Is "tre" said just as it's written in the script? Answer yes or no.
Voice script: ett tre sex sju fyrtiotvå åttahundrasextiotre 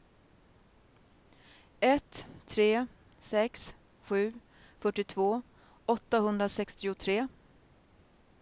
yes